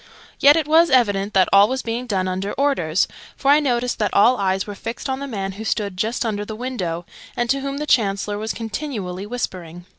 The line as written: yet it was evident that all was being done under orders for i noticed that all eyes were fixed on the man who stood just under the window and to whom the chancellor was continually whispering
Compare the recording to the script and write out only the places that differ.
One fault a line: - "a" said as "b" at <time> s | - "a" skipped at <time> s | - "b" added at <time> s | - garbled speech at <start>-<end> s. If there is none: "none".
none